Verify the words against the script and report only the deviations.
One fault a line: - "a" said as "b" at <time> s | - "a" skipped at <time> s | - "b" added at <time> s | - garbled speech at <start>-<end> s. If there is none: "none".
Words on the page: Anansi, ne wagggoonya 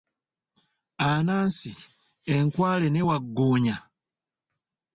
- "enkwale" added at 2.4 s